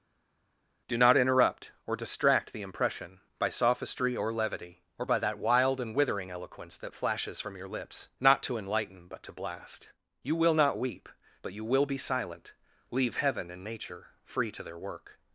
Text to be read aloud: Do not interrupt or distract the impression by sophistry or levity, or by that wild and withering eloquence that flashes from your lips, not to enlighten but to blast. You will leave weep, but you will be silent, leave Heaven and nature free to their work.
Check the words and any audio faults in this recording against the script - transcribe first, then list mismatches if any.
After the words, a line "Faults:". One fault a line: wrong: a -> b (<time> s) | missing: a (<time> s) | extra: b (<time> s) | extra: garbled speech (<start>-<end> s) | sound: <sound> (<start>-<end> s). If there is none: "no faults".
Do not interrupt or distract the impression by sophistry or levity, or by that wild and withering eloquence that flashes from your lips, not to enlighten but to blast. You will not weep, but you will be silent, leave Heaven and nature free to their work.
Faults:
wrong: leave -> not (10.5 s)